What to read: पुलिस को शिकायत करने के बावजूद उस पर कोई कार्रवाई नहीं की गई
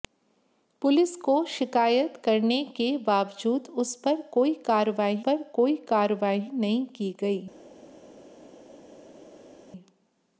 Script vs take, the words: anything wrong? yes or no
yes